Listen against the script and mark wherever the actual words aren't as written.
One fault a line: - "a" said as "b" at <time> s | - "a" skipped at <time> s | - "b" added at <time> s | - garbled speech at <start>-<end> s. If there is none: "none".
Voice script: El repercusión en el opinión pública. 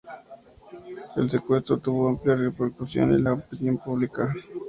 - "secuestro tuvo amplia" added at 1.3 s
- "el" said as "la" at 3.2 s